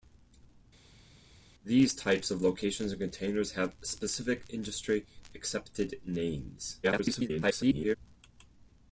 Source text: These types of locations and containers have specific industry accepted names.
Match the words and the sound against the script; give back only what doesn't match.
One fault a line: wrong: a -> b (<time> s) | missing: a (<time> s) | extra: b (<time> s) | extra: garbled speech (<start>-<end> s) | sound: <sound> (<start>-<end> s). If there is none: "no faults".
extra: garbled speech (6.8-8.0 s)